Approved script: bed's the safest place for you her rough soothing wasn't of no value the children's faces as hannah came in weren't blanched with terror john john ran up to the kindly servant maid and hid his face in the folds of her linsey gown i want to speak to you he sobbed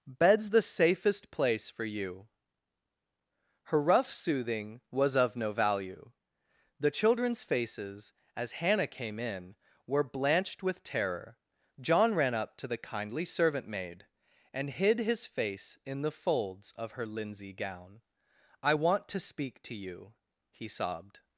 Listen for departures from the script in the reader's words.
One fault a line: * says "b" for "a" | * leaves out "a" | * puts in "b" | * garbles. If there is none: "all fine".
* says "was" for "wasn't"
* says "were" for "weren't"
* leaves out "john"